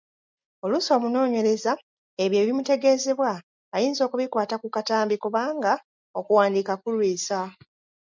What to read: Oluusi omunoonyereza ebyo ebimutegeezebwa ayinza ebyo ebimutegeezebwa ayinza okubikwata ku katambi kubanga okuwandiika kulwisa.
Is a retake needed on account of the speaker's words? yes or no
yes